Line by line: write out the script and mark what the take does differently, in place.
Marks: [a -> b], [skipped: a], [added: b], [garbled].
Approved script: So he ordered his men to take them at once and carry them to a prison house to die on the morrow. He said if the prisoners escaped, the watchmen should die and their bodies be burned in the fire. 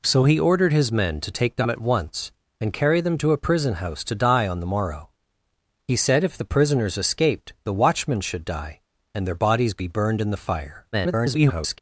So he ordered his men to take them at once and carry them to a prison house to die on the morrow. He said if the prisoners escaped, the watchmen should die and their bodies be burned in the fire. [garbled]